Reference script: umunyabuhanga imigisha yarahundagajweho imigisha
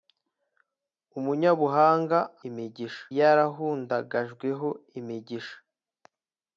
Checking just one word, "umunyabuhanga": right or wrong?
right